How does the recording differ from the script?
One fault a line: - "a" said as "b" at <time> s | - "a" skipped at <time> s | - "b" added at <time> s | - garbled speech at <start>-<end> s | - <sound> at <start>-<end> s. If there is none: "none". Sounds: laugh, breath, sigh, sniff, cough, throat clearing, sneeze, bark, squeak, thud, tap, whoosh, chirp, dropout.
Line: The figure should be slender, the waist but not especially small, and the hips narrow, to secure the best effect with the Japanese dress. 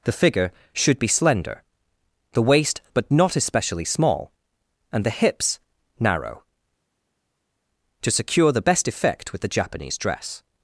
none